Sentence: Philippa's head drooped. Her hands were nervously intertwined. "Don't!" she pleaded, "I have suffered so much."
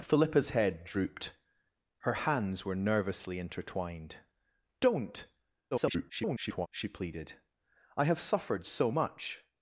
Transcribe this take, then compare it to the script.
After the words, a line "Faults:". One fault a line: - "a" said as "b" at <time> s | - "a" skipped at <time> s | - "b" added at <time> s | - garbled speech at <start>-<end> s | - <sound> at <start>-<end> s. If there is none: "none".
Philippa's head drooped. Her hands were nervously intertwined. "Don't!" [garbled] she pleaded, "I have suffered so much."
Faults:
- garbled speech at 5.7-6.7 s